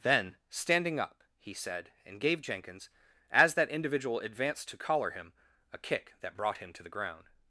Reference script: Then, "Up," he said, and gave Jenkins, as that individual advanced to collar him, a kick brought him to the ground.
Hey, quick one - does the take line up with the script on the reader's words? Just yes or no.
no